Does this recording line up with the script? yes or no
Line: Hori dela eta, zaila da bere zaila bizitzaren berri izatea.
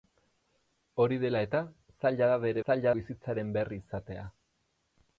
yes